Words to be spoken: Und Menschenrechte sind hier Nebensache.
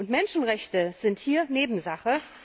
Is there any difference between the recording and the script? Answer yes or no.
no